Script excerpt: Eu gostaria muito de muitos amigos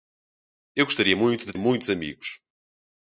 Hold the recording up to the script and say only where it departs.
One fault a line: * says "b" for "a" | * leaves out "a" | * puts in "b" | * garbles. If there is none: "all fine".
all fine